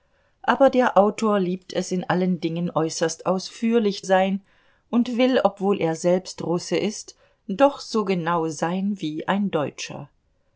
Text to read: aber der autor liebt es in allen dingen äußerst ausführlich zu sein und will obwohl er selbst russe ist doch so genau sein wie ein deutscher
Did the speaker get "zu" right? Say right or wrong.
wrong